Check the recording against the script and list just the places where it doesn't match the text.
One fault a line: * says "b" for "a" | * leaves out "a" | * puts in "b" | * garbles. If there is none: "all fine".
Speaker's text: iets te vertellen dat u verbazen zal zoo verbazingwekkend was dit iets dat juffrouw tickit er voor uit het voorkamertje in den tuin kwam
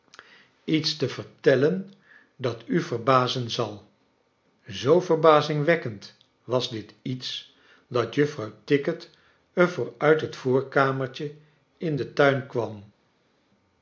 all fine